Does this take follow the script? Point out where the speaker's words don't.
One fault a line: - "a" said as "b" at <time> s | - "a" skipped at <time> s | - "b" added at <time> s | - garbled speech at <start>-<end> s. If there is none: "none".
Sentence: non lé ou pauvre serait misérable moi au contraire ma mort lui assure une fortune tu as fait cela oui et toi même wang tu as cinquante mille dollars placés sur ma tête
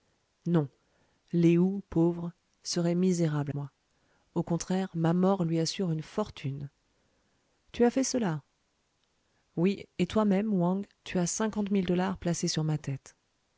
none